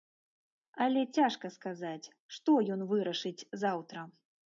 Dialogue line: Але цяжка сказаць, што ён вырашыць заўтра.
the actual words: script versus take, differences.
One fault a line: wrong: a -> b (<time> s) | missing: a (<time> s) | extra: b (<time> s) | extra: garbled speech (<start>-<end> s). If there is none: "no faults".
no faults